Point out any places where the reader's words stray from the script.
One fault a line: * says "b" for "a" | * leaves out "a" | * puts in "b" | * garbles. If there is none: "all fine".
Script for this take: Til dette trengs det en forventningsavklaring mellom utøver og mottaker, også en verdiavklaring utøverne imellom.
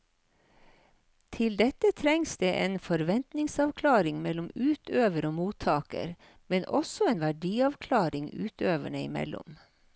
* puts in "men"